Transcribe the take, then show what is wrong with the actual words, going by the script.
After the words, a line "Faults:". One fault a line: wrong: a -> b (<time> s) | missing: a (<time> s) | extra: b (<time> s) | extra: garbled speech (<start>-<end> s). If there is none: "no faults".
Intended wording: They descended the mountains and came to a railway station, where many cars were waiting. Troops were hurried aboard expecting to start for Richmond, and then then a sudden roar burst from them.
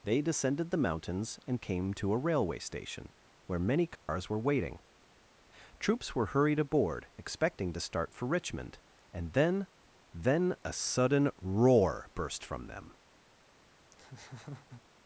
They descended the mountains and came to a railway station, where many cars were waiting. Troops were hurried aboard expecting to start for Richmond, and then then a sudden roar burst from them.
Faults:
no faults